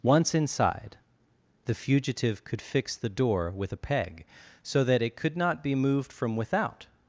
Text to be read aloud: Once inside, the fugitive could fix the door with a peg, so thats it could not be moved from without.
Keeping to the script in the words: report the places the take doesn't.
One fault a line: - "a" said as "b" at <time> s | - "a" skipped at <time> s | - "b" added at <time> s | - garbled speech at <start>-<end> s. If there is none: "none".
- "thats" said as "that" at 4.8 s